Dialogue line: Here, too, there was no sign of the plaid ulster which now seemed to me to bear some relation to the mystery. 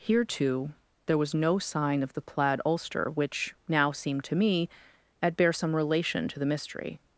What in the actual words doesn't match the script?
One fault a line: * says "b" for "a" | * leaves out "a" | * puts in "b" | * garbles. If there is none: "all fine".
* says "at" for "to"